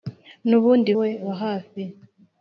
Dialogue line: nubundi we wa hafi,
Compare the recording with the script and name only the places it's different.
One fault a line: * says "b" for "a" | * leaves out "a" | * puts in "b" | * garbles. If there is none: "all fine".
all fine